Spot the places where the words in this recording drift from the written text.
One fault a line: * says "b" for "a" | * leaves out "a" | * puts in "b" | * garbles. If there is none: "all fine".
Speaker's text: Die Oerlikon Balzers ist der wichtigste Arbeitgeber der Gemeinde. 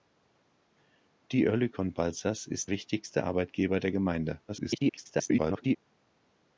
* leaves out "der"
* garbles